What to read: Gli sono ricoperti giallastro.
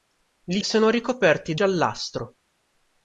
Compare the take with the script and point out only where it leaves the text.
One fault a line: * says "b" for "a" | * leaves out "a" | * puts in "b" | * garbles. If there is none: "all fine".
all fine